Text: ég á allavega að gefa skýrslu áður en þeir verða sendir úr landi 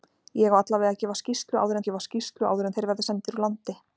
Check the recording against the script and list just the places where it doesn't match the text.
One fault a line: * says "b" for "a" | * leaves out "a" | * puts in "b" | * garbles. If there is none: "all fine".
* puts in "gefa skýrslu áður"